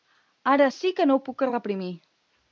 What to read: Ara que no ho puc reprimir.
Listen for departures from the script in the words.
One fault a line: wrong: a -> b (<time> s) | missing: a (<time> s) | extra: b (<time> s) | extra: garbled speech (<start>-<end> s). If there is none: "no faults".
extra: sí (0.7 s)